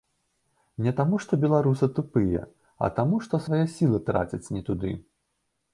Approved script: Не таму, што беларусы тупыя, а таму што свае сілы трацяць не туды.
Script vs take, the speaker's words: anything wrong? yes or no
no